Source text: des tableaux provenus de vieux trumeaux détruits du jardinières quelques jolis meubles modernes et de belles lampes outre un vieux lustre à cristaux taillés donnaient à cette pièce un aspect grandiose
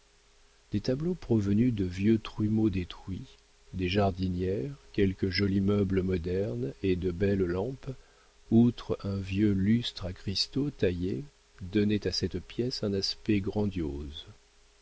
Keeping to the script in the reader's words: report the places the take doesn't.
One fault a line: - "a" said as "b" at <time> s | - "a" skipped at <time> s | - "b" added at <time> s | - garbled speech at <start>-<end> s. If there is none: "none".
- "du" said as "des" at 3.7 s